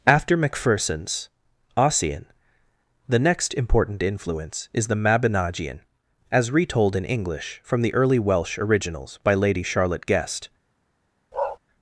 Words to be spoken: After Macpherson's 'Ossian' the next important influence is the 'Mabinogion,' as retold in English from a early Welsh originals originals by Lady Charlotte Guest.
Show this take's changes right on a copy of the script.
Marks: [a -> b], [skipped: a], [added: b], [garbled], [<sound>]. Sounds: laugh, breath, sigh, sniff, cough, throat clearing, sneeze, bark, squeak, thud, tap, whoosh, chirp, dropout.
After Macpherson's 'Ossian' the next important influence is the 'Mabinogion,' as retold in English from [a -> the] early Welsh originals [skipped: originals] by Lady Charlotte Guest. [bark]